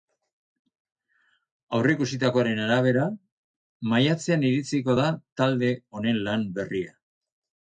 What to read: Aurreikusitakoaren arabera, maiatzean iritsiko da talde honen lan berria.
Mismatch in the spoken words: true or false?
false